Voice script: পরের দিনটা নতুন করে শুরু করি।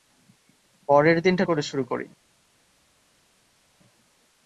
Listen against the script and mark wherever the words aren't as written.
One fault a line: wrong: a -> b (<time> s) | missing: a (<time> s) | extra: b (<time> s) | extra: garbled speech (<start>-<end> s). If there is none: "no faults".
missing: নতুন (1.4 s)